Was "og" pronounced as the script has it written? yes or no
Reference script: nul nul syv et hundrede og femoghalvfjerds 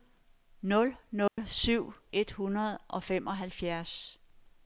yes